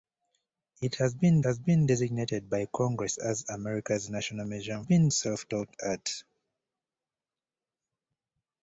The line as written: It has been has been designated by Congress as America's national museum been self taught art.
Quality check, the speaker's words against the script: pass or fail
pass